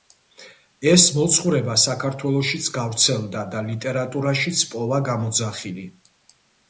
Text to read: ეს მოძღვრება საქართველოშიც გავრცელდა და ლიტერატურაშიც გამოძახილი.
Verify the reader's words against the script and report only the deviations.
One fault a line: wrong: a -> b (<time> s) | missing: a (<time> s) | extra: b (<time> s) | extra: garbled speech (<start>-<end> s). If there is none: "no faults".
extra: პოვა (4.7 s)